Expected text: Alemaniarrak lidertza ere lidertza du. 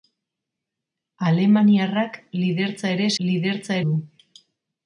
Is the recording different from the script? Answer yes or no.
no